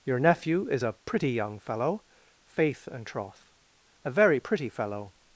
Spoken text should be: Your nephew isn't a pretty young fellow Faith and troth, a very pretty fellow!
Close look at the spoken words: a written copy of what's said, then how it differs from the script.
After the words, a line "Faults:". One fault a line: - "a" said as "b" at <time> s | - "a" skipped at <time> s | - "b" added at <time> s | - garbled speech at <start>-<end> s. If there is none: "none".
Your nephew is a pretty young fellow Faith and troth, a very pretty fellow!
Faults:
- "isn't" said as "is" at 0.7 s